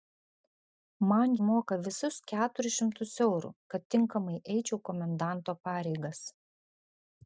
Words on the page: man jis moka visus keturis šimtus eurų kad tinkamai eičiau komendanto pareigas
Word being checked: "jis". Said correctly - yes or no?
no